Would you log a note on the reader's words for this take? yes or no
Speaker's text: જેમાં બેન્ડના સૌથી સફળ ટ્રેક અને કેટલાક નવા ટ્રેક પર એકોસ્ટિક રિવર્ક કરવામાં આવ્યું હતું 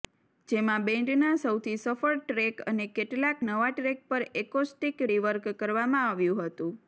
no